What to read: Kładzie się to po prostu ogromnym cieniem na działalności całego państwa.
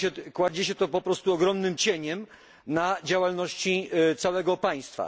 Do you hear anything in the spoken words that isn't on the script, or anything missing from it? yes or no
no